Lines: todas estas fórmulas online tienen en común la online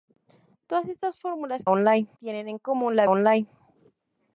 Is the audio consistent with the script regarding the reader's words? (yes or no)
yes